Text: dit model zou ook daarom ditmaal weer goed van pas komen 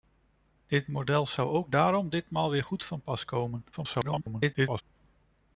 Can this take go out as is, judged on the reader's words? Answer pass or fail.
fail